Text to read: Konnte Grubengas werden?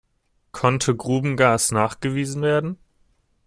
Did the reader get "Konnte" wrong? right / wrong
right